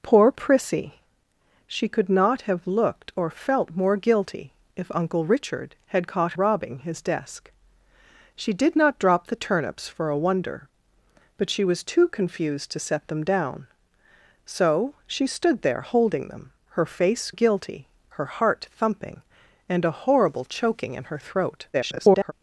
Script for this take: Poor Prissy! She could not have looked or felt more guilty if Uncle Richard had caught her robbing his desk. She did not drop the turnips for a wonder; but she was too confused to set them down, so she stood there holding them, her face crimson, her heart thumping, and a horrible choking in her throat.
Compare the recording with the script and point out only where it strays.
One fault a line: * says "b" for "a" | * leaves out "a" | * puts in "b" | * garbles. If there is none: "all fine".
* leaves out "her"
* says "guilty" for "crimson"
* garbles